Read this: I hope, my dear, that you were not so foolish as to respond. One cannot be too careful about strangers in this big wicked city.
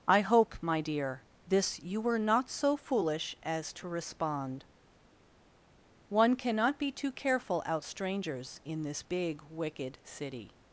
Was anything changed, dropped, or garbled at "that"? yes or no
yes